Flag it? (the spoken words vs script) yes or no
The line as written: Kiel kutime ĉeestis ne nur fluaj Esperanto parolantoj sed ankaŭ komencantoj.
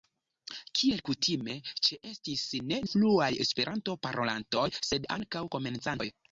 yes